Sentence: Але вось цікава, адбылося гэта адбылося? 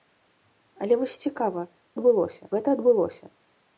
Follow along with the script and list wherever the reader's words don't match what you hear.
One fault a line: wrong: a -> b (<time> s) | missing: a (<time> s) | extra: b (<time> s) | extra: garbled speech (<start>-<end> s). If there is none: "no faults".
no faults